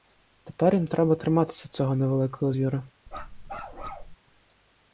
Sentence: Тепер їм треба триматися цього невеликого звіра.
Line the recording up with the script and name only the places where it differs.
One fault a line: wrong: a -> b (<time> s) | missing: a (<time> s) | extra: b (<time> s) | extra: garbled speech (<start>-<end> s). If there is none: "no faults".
no faults